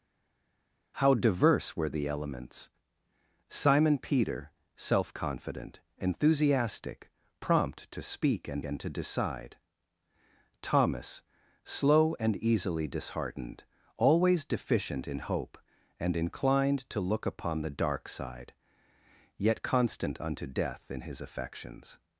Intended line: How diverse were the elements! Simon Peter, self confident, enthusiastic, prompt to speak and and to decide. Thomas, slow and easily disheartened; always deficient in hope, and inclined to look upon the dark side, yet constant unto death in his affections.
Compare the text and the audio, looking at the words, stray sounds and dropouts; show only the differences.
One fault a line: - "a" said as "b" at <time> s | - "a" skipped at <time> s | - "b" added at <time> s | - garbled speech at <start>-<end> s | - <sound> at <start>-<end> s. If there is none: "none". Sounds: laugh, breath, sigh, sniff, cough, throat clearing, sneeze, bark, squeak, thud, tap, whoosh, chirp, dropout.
none